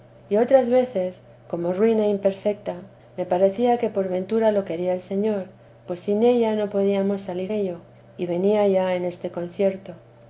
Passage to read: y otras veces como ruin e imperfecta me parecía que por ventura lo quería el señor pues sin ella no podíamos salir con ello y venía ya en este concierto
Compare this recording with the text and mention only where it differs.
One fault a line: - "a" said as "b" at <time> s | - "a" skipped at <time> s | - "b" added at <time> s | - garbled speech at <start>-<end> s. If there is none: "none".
- "con" skipped at 7.5 s